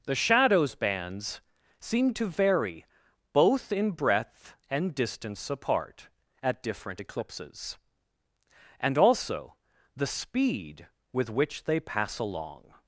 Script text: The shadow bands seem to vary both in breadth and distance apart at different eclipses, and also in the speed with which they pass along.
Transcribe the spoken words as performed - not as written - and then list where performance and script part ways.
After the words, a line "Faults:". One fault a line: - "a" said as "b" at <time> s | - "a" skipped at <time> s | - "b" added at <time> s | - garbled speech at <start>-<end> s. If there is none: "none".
The shadows bands seem to vary both in breadth and distance apart at different eclipses, and also the speed with which they pass along.
Faults:
- "shadow" said as "shadows" at 0.1 s
- "in" skipped at 9.6 s